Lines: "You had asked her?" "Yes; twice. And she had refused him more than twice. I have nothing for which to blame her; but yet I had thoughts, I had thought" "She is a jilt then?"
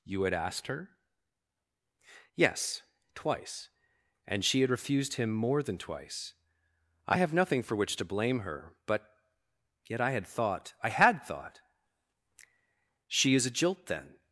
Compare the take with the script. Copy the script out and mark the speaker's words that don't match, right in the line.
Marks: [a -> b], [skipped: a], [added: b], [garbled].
"You had asked her?" "Yes; twice. And she had refused him more than twice. I have nothing for which to blame her; but yet I had [thoughts, -> thought] I had thought" "She is a jilt then?"